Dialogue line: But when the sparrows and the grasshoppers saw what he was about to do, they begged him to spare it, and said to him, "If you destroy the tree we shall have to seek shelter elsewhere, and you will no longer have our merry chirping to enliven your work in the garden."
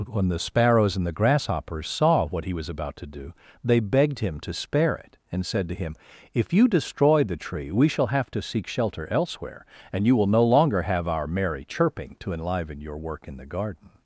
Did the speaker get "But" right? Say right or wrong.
wrong